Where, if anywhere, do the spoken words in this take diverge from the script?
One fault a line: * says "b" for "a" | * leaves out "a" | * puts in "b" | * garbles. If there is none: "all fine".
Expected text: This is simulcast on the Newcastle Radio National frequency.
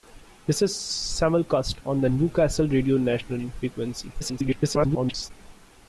* garbles